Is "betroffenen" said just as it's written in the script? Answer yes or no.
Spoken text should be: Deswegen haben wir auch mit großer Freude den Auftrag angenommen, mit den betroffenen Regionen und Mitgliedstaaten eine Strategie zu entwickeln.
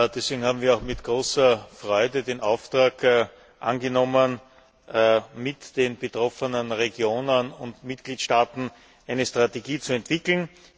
yes